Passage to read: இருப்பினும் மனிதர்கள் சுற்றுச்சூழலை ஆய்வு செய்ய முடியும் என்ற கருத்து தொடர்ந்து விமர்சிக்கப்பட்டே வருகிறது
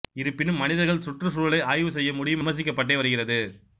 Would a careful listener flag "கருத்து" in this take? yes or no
yes